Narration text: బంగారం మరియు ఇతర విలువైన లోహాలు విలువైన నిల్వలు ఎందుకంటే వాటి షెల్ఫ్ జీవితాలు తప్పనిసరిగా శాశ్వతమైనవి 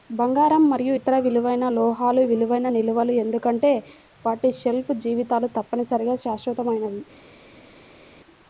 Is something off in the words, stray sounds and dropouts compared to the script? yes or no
no